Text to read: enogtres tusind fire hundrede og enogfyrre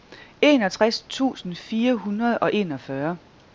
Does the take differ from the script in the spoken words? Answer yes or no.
no